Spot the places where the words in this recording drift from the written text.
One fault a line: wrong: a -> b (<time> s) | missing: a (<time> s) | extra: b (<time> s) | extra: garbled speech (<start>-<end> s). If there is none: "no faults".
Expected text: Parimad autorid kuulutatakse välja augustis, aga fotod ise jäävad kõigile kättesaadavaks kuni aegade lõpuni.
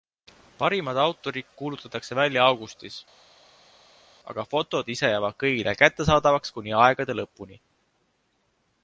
no faults